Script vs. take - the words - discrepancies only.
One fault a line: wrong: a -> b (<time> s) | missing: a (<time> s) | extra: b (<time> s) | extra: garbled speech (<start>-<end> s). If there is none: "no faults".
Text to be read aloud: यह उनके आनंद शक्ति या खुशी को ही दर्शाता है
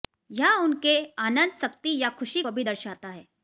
wrong: ही -> भी (2.5 s)